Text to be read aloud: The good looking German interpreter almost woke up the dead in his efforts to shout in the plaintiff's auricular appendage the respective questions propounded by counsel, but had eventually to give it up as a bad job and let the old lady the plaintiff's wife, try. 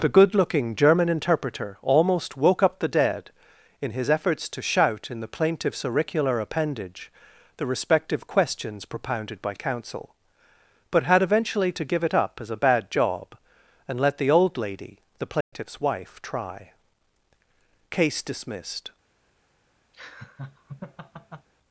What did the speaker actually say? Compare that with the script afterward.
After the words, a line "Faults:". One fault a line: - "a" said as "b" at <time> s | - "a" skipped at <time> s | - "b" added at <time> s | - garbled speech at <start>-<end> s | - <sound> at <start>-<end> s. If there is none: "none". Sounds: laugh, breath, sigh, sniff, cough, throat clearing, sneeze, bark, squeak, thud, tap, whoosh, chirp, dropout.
The good looking German interpreter almost woke up the dead in his efforts to shout in the plaintiff's auricular appendage the respective questions propounded by counsel, but had eventually to give it up as a bad job and let the old lady the plaintiff's wife, try. Case dismissed
Faults:
- dropout at 15.4-15.5 s
- "Case dismissed" added at 17.9 s
- laugh at 19.9-21.5 s